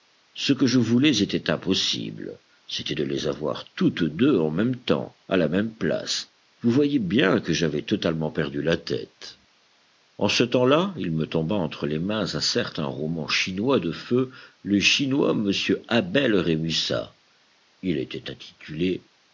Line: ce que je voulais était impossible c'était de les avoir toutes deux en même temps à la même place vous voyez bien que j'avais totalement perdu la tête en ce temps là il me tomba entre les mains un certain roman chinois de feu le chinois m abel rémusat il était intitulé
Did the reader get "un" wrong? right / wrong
right